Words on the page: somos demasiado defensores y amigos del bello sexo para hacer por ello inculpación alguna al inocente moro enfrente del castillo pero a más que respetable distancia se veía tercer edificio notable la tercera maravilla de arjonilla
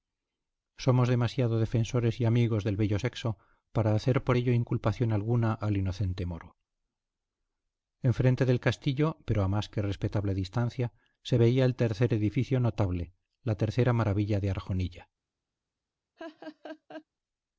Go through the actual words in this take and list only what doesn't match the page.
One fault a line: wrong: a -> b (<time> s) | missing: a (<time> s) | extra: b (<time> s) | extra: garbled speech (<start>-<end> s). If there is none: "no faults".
extra: el (11.6 s)